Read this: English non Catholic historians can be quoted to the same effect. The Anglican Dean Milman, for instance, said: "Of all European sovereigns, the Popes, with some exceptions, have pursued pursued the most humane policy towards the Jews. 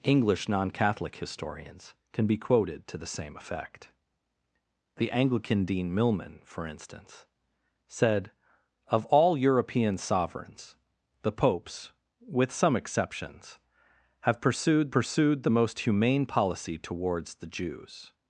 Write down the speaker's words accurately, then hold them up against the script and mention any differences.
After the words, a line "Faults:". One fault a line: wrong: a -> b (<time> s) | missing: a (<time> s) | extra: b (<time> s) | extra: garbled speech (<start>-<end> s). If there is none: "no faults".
English non Catholic historians can be quoted to the same effect. The Anglican Dean Milman, for instance, said: "Of all European sovereigns, the Popes, with some exceptions, have pursued pursued the most humane policy towards the Jews.
Faults:
no faults